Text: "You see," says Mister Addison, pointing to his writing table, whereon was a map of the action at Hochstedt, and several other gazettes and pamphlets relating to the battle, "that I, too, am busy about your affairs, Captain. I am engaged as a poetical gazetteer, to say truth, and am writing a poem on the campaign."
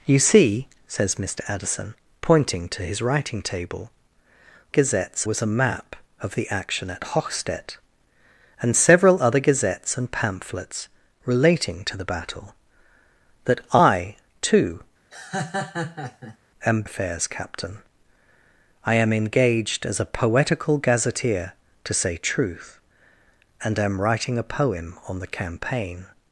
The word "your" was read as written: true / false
false